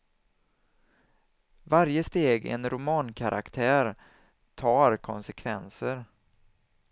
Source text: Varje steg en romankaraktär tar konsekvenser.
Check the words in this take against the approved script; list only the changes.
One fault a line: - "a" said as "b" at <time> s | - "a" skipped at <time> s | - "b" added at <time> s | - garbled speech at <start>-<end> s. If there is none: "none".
none